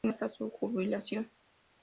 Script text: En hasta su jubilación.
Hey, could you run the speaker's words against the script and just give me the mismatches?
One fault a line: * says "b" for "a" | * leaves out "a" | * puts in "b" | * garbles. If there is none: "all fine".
all fine